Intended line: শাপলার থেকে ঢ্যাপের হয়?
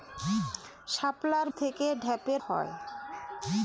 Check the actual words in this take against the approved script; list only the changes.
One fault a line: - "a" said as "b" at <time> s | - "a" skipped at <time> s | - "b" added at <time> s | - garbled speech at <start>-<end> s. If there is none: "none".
none